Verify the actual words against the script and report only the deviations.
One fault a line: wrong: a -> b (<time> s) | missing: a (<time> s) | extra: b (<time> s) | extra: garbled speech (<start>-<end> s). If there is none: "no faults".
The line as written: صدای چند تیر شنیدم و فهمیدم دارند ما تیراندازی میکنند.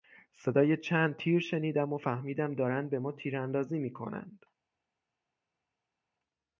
extra: به (2.9 s)